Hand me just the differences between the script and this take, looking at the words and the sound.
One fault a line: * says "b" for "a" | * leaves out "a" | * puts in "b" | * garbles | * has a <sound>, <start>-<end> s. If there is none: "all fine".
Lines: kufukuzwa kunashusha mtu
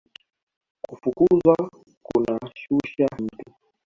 all fine